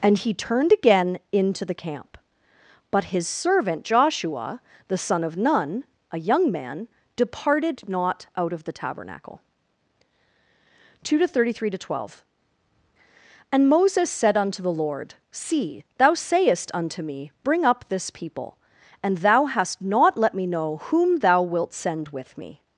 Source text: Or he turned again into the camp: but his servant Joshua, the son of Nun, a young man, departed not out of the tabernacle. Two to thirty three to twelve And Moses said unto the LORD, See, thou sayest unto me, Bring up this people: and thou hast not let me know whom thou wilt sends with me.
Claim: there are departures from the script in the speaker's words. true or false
true